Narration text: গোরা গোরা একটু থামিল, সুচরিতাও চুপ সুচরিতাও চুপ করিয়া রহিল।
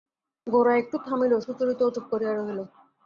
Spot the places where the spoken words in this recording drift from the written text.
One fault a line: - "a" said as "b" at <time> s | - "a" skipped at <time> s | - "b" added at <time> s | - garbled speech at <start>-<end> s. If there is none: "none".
- "গোরা" skipped at 0.7 s
- "সুচরিতাও চুপ" skipped at 2.0 s